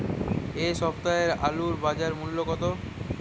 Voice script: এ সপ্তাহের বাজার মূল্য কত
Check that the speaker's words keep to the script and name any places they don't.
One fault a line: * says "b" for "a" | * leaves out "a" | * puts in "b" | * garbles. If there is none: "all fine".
* puts in "আলুর"